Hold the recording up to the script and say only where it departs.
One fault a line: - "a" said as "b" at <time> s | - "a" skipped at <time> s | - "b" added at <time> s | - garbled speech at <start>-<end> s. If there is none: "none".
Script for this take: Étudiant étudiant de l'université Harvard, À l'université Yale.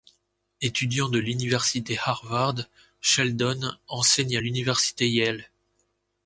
- "étudiant" skipped at 1.1 s
- "Sheldon enseigne" added at 3.0 s